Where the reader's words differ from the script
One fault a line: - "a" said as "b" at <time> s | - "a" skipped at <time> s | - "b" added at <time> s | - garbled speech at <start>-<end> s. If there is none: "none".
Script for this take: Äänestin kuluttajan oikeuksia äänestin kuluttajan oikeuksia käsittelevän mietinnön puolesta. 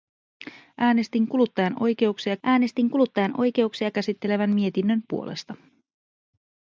none